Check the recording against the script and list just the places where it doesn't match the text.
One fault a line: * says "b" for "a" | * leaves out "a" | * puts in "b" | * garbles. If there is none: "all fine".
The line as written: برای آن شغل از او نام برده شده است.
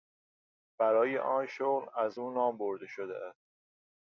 all fine